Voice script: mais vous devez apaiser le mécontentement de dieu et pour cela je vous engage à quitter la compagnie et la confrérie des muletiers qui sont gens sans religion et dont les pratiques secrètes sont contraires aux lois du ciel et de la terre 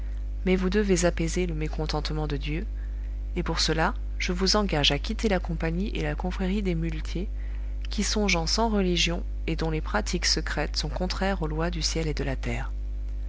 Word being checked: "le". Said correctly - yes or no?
yes